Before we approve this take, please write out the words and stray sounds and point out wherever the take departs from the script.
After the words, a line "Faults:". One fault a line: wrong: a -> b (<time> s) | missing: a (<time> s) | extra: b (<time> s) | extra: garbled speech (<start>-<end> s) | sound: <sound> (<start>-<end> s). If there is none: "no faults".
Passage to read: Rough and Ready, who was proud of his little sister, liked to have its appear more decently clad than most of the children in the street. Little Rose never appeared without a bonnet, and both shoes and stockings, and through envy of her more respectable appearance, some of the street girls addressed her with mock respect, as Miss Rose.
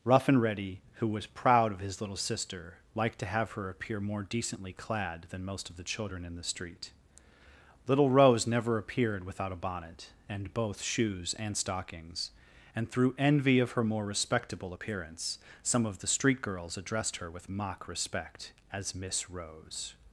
Rough and Ready, who was proud of his little sister, liked to have her appear more decently clad than most of the children in the street. Little Rose never appeared without a bonnet, and both shoes and stockings, and through envy of her more respectable appearance, some of the street girls addressed her with mock respect, as Miss Rose.
Faults:
wrong: its -> her (3.5 s)